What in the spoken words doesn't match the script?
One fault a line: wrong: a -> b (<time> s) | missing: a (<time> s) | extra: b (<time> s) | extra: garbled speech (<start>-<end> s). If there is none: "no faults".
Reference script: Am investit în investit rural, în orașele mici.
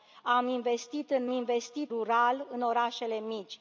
no faults